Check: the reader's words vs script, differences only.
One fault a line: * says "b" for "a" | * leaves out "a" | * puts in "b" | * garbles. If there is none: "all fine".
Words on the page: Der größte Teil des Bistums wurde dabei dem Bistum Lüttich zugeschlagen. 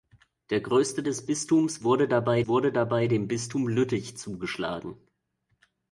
* leaves out "Teil"
* puts in "wurde dabei"